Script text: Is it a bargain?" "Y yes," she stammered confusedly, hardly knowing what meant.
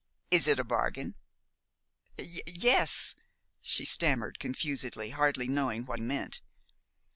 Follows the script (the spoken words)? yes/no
yes